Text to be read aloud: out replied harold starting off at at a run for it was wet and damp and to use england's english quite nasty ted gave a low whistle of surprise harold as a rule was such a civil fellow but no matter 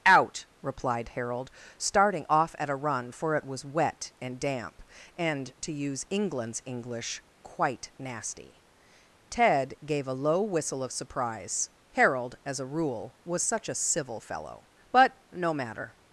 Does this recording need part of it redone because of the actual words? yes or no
yes